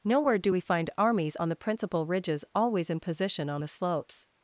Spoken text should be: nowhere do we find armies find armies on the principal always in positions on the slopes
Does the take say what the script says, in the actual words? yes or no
no